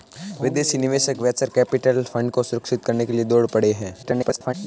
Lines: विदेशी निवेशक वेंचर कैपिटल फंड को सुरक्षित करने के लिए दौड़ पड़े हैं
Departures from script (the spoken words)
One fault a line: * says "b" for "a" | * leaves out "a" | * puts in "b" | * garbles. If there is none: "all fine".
* garbles